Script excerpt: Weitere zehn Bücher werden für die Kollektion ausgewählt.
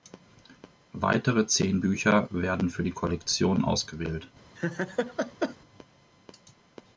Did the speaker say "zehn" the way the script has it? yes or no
yes